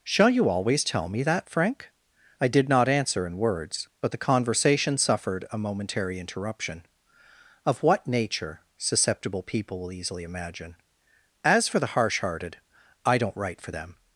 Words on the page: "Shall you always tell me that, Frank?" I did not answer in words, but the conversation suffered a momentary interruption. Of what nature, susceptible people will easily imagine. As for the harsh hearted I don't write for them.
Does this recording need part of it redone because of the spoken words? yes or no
no